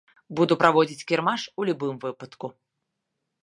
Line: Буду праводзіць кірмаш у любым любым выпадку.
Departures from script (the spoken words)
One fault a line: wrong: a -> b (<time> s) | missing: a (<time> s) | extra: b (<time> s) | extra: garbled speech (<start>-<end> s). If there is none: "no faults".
missing: любым (1.9 s)